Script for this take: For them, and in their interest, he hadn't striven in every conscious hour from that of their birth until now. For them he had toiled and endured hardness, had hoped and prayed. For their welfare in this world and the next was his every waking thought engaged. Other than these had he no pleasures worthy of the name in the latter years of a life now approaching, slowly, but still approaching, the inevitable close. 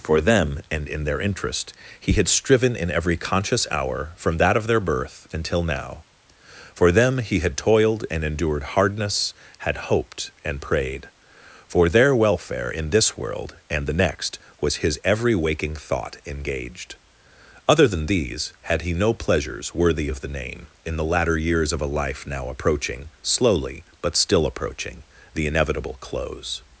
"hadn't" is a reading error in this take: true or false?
true